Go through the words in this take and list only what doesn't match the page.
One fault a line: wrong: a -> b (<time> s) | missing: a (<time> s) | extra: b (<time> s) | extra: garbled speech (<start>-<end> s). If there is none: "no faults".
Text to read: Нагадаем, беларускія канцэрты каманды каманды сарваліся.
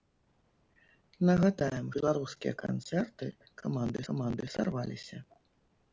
no faults